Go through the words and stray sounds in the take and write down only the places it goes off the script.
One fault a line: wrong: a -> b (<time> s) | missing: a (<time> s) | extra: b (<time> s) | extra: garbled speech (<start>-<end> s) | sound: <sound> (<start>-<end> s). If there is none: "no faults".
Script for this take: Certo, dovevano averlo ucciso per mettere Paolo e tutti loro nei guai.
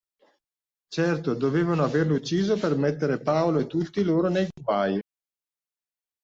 no faults